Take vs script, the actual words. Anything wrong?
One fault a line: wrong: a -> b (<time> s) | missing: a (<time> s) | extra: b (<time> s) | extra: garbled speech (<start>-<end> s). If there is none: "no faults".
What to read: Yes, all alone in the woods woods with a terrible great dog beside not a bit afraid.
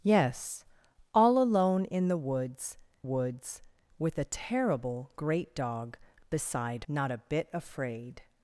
no faults